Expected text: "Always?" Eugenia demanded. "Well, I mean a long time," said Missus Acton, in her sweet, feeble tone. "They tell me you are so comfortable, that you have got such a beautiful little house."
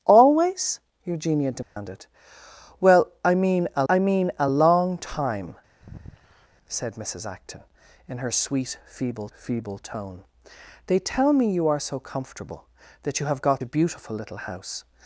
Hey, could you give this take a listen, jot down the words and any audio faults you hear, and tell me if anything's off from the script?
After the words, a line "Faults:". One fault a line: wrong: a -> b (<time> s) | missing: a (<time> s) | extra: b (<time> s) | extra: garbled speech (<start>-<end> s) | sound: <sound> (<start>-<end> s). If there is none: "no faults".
"Always?" Eugenia demanded. "Well, I mean a I mean a long time," said Missus Acton, in her sweet, feeble feeble tone. "They tell me you are so comfortable, that you have got a beautiful little house."
Faults:
sound: dropout (1.6-1.8 s)
extra: I mean a (3.9 s)
sound: sigh (5.8-6.5 s)
extra: feeble (9.3 s)
missing: such (13.6 s)